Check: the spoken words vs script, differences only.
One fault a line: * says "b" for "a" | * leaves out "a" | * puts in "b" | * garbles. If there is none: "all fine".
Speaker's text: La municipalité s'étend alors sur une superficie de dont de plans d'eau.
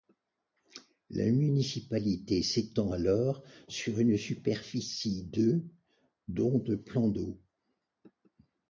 all fine